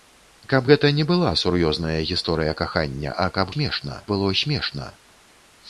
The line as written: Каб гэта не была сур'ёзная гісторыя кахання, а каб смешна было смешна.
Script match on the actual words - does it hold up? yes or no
yes